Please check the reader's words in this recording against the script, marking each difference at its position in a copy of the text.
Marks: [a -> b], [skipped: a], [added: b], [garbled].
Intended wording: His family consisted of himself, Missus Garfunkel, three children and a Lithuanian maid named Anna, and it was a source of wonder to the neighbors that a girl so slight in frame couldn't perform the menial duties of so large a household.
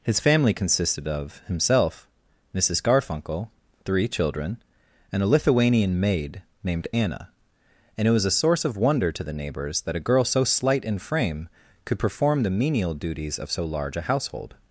His family consisted of himself, Missus Garfunkel, three children and a Lithuanian maid named Anna, and it was a source of wonder to the neighbors that a girl so slight in frame [couldn't -> could] perform the menial duties of so large a household.